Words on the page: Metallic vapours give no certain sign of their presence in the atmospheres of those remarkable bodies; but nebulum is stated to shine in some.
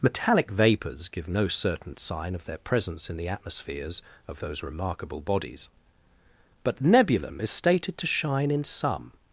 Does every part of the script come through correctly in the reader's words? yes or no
yes